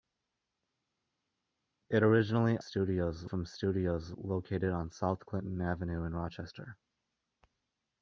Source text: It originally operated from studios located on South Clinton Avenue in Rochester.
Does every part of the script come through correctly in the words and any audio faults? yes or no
no